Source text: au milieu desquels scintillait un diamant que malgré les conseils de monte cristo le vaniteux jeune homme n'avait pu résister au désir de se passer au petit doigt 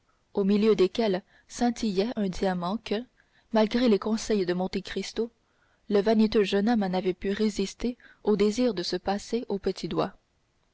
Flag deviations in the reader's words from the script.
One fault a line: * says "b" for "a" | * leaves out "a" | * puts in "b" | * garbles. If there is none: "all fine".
all fine